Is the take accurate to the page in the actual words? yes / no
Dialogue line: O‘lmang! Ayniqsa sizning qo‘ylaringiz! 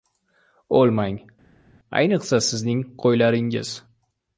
yes